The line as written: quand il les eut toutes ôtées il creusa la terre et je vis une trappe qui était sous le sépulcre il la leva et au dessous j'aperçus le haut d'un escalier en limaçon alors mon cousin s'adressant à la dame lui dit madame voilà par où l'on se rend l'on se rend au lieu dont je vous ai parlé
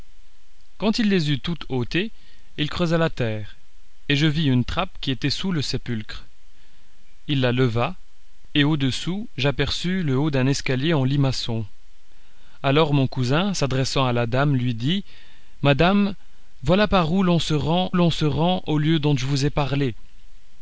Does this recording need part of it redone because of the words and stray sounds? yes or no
no